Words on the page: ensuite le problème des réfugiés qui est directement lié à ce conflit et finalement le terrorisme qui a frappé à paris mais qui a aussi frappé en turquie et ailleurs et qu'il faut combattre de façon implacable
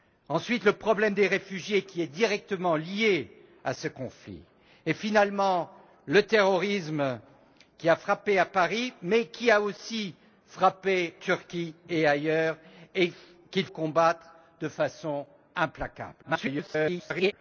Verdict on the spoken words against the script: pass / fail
fail